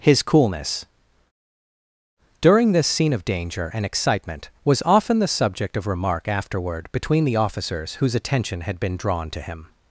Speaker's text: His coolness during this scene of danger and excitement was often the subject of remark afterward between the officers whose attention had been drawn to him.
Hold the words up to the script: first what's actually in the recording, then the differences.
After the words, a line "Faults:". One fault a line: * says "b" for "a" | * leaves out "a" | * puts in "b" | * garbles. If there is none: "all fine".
His coolness during this scene of danger and excitement was often the subject of remark afterward between the officers whose attention had been drawn to him.
Faults:
all fine